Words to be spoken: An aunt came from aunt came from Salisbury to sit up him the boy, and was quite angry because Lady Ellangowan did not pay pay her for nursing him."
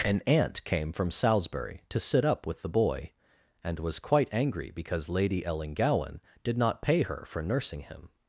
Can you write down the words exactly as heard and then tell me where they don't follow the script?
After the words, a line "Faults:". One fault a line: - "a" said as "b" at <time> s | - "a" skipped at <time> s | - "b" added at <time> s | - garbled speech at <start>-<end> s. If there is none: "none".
An aunt came from Salisbury to sit up with the boy, and was quite angry because Lady Ellangowan did not pay her for nursing him."
Faults:
- "aunt came from" skipped at 1.1 s
- "him" said as "with" at 2.5 s
- "pay" skipped at 7.0 s